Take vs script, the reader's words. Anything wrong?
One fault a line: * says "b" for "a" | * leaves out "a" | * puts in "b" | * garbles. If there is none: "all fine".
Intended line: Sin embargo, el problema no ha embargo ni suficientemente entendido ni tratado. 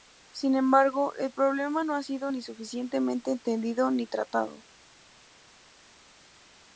* says "sido" for "embargo"